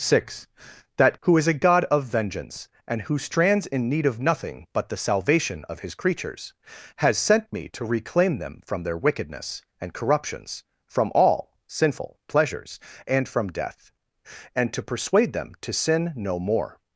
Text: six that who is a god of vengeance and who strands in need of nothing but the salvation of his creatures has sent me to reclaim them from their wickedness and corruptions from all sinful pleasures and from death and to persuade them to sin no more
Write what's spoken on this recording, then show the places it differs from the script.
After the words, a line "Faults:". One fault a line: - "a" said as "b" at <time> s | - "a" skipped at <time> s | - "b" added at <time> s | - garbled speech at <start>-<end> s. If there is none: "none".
six that who is a god of vengeance and who strands in need of nothing but the salvation of his creatures has sent me to reclaim them from their wickedness and corruptions from all sinful pleasures and from death and to persuade them to sin no more
Faults:
none